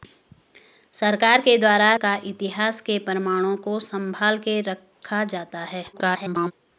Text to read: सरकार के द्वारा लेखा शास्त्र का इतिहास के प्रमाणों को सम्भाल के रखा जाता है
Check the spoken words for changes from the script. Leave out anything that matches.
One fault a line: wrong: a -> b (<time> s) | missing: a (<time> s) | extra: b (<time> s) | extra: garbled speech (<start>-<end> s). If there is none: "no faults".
missing: लेखा शास्त्र (1.9 s)
extra: garbled speech (5.9-6.5 s)